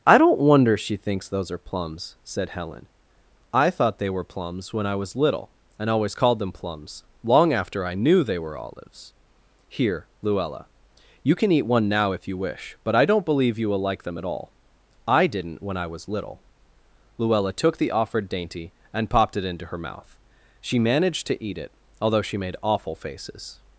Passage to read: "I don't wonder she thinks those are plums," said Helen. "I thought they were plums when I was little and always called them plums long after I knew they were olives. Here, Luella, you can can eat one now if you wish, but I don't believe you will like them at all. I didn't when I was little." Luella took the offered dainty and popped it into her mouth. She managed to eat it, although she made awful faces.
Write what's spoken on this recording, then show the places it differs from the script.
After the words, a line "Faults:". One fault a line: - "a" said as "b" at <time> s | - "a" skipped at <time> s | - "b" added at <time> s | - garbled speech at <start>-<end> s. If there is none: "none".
"I don't wonder she thinks those are plums," said Helen. "I thought they were plums when I was little and always called them plums long after I knew they were olives. Here, Luella, you can eat one now if you wish, but I don't believe you will like them at all. I didn't when I was little." Luella took the offered dainty and popped it into her mouth. She managed to eat it, although she made awful faces.
Faults:
- "can" skipped at 11.5 s